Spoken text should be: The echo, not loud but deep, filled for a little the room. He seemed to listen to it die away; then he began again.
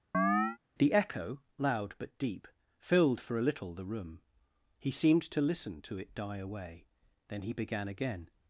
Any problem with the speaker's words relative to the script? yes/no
yes